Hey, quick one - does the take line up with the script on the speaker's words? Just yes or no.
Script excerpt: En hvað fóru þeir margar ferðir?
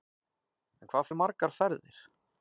no